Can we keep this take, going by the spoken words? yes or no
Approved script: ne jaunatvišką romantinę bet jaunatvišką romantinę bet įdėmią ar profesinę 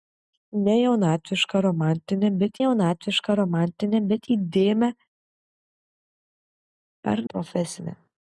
yes